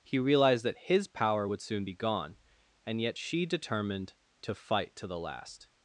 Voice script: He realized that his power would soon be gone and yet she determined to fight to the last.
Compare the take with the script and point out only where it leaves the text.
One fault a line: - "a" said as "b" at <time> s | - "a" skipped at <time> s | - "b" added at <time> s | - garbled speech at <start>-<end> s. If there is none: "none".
none